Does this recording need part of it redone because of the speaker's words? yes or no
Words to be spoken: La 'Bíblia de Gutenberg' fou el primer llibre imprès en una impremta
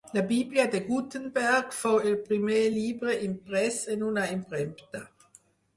no